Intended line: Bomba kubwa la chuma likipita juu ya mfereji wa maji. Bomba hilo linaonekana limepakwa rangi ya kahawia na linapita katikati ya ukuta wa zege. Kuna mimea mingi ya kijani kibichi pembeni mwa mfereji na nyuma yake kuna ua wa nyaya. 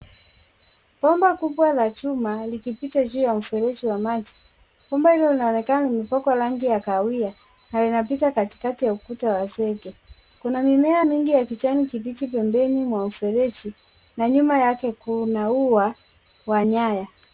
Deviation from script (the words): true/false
false